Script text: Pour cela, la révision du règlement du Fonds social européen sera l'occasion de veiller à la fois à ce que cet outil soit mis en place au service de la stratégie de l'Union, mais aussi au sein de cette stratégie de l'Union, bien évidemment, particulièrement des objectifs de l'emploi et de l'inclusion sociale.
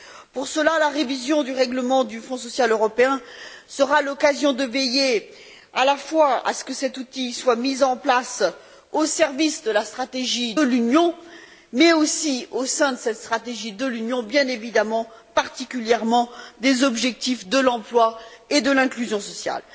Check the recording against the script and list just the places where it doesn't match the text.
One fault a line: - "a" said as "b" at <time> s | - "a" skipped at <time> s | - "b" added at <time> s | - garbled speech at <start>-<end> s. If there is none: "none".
- "de" skipped at 10.6 s